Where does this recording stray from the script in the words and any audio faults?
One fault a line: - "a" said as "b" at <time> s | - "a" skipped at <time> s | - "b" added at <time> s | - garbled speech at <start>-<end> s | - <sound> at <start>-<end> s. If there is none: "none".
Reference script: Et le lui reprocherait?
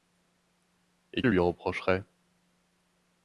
none